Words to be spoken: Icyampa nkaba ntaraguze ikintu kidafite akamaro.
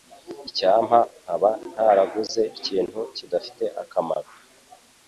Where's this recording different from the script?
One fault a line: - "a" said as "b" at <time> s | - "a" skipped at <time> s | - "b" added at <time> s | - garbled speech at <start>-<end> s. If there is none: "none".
none